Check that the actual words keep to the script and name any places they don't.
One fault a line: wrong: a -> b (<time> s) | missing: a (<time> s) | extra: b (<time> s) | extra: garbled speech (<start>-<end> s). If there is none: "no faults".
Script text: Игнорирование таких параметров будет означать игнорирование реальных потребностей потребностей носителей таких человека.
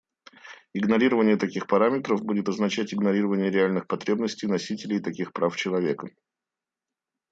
missing: потребностей (4.5 s)
extra: прав (5.3 s)